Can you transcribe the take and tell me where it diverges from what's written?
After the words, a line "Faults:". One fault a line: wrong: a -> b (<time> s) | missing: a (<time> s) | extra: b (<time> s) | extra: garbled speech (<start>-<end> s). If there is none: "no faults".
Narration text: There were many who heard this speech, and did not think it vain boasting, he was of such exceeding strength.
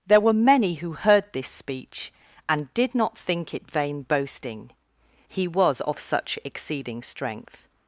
There were many who heard this speech, and did not think it vain boasting, he was of such exceeding strength.
Faults:
no faults